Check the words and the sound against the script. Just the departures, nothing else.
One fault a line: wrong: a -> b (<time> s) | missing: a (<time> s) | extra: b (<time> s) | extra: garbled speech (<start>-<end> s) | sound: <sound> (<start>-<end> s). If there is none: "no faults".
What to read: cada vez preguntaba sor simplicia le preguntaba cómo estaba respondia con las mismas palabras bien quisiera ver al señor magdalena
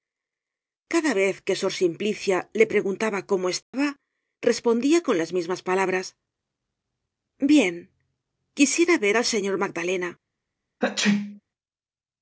wrong: preguntaba -> que (1.4 s)
sound: dropout (3.6-3.7 s)
sound: sneeze (10.8-11.4 s)